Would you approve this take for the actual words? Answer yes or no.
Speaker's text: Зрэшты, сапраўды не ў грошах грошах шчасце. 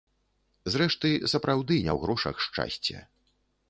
no